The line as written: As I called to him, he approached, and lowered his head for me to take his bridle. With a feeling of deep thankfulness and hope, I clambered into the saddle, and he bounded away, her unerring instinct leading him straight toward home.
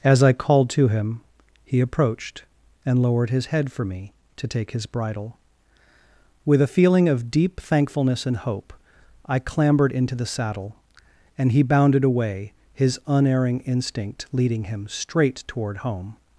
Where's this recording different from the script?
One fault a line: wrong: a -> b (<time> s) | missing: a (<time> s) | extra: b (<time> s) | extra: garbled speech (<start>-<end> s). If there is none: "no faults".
wrong: her -> his (12.7 s)